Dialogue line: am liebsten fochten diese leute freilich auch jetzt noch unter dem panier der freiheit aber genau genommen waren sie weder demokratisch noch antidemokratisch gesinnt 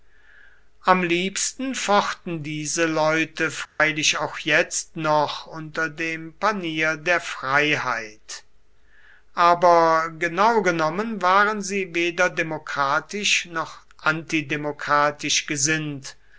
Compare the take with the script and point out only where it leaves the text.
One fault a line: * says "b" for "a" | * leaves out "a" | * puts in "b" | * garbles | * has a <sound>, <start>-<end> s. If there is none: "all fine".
* has a dropout, 3.7-3.8 s